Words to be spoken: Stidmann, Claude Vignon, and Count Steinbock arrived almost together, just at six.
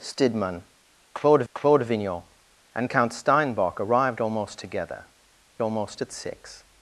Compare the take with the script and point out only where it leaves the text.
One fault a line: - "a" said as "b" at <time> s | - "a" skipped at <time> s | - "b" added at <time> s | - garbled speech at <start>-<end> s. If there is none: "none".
- "Claude" added at 1.5 s
- "just" said as "almost" at 5.6 s